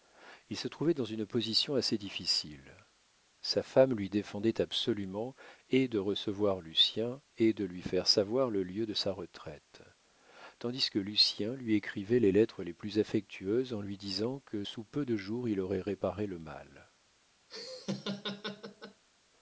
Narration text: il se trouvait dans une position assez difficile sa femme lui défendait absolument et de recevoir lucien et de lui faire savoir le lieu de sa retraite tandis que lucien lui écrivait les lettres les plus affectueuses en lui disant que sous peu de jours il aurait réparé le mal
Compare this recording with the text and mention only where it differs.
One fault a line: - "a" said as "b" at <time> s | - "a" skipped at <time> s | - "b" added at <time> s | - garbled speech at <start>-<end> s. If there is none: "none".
none